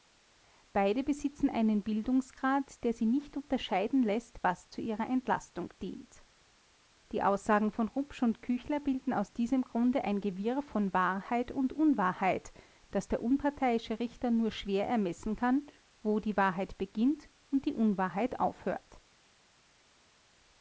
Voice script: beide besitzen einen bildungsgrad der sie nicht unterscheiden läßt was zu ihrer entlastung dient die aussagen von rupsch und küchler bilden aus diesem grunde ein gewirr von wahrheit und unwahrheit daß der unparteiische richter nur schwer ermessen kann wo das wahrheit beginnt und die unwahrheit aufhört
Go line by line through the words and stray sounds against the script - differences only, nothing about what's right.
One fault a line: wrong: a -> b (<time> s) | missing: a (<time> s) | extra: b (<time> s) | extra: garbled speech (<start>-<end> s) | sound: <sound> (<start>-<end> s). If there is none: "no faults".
wrong: das -> die (16.2 s)